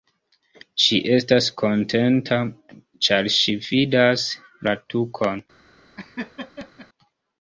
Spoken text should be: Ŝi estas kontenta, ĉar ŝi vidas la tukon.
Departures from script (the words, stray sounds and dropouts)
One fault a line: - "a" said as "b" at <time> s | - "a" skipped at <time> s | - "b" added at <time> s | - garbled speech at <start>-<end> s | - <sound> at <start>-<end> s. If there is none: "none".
- laugh at 6.0-6.9 s